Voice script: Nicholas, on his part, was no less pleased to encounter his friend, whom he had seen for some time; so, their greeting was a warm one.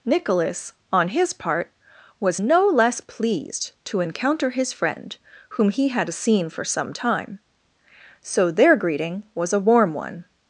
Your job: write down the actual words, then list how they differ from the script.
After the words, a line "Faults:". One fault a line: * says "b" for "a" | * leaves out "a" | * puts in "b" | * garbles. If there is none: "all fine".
Nicholas, on his part, was no less pleased to encounter his friend, whom he had seen for some time; so, their greeting was a warm one.
Faults:
all fine